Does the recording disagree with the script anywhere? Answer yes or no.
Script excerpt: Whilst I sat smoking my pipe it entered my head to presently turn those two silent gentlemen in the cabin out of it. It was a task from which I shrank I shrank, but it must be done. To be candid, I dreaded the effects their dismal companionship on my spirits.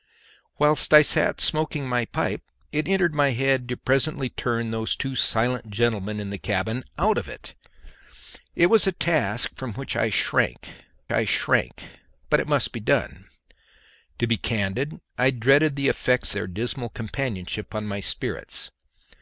no